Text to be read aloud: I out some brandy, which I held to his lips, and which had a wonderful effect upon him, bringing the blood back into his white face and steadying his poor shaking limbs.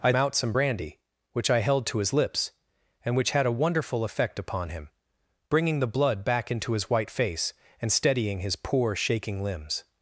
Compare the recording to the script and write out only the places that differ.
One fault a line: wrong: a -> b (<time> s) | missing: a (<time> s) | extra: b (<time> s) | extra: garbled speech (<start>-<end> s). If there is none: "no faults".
no faults